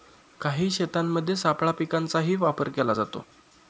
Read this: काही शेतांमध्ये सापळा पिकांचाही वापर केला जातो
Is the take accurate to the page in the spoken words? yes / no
yes